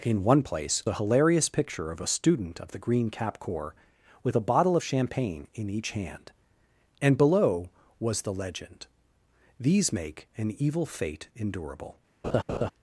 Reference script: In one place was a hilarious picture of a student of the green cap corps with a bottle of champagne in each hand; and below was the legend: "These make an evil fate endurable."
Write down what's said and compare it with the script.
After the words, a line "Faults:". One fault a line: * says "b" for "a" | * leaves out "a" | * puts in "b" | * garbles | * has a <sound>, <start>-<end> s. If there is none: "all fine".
In one place a hilarious picture of a student of the green cap corps with a bottle of champagne in each hand; and below was the legend: "These make an evil fate endurable."
Faults:
* leaves out "was"
* has a laugh, 12.2-12.7 s